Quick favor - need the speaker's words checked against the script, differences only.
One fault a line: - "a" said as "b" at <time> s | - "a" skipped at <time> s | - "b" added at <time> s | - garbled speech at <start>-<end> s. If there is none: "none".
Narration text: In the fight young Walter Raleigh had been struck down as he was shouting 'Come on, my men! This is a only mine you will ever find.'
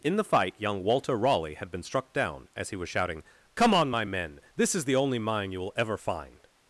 - "a" said as "the" at 4.8 s